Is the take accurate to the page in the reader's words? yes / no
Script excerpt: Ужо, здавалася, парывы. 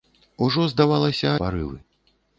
yes